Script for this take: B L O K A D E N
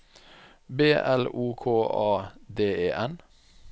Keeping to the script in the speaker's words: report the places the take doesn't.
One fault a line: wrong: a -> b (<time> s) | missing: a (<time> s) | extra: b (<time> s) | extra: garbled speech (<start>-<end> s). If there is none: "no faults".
no faults